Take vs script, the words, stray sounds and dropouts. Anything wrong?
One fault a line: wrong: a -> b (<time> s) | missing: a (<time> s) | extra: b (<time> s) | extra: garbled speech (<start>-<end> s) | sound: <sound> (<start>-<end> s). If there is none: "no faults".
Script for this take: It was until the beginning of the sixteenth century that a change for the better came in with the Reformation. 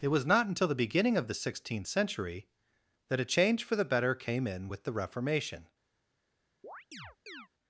extra: not (0.2 s)
sound: chirp (6.6-7.5 s)